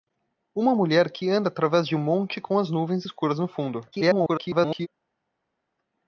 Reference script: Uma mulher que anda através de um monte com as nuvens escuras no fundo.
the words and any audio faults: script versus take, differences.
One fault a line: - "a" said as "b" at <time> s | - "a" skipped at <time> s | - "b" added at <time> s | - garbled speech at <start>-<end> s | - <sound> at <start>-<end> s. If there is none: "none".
- garbled speech at 3.9-4.9 s